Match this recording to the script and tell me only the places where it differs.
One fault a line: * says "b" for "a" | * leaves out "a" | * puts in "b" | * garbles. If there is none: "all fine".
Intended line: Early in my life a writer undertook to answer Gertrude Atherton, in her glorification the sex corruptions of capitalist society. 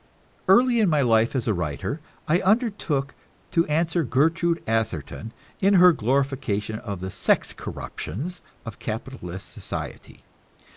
* puts in "as"
* puts in "I"
* puts in "of"